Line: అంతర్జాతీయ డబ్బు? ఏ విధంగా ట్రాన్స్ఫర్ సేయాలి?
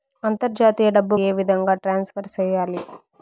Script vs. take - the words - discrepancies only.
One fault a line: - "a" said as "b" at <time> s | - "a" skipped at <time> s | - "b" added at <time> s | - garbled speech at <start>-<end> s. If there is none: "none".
none